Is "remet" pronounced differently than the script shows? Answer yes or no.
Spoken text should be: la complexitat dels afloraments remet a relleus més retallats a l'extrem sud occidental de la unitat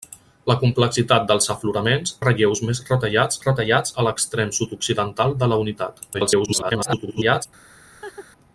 yes